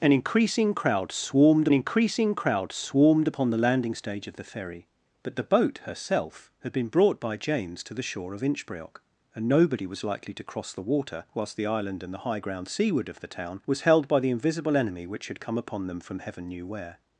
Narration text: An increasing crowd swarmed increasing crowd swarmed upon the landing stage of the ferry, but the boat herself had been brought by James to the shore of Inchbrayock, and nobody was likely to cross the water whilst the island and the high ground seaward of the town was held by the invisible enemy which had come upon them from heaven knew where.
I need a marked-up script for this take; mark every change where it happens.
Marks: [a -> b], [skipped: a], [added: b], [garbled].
An increasing crowd swarmed increasing crowd swarmed upon the landing stage of the ferry, but the boat herself had been brought by James to the shore of Inchbrayock, and nobody was likely to cross the water whilst the island and the high ground seaward of the town was held by the invisible enemy which had come upon them from heaven knew where.